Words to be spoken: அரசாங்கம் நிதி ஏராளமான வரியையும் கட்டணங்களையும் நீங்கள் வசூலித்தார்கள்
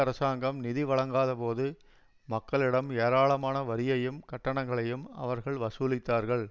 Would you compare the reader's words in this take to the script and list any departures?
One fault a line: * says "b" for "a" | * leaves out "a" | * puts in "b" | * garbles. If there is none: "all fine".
* puts in "வழங்காதபோது மக்களிடம்"
* says "அவர்கள்" for "நீங்கள்"